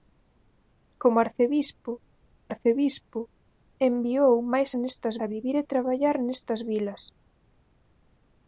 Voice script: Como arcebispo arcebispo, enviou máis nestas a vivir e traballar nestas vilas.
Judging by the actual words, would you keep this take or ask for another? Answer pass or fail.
pass